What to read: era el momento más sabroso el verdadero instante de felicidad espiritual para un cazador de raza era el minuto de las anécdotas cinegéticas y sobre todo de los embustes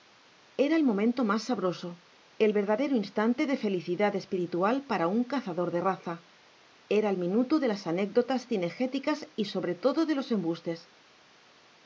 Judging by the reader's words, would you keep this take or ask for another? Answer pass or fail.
pass